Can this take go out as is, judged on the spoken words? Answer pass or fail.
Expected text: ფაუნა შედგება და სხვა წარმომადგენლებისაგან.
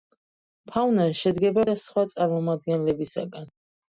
pass